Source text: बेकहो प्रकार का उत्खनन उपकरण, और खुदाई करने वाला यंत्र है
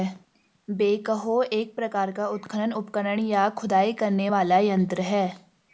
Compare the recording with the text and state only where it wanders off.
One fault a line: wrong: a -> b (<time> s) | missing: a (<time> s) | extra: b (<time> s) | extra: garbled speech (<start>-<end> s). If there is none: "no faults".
extra: एक (1.4 s)
wrong: और -> या (3.2 s)